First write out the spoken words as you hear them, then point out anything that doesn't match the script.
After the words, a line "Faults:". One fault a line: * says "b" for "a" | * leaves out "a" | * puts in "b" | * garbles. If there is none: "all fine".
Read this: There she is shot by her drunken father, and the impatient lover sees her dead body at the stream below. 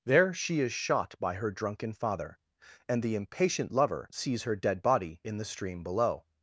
There she is shot by her drunken father, and the impatient lover sees her dead body in the stream below.
Faults:
* says "in" for "at"